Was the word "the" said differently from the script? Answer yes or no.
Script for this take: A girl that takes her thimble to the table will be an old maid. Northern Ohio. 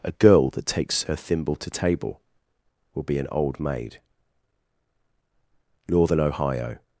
yes